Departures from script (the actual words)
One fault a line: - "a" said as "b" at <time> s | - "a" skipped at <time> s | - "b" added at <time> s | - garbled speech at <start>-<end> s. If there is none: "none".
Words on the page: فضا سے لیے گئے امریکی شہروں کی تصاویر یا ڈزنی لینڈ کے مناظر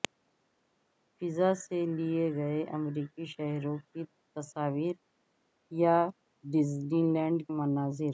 - "کے" skipped at 7.4 s